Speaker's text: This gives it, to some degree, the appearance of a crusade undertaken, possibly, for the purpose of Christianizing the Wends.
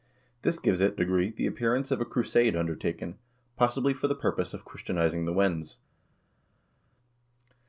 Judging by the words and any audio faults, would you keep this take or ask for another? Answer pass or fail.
fail